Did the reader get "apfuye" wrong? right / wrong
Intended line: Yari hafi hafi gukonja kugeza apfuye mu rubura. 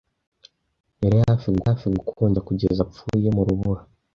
right